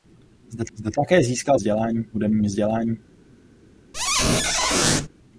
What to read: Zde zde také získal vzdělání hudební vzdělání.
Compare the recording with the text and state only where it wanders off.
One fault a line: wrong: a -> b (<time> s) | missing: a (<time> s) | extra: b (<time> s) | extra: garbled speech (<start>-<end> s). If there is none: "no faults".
no faults